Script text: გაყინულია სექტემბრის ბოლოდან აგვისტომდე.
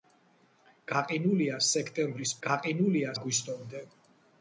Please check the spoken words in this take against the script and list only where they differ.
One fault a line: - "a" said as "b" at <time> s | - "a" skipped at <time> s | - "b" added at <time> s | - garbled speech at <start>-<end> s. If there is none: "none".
- "ბოლოდან" said as "გაყინულია" at 2.5 s